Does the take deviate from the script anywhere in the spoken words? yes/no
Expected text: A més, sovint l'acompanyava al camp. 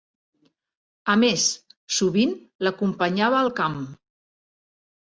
no